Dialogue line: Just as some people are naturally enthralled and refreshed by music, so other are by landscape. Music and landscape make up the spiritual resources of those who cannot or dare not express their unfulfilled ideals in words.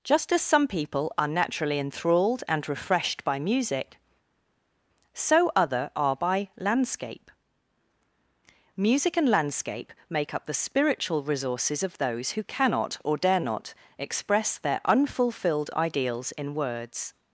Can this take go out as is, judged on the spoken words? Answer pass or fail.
pass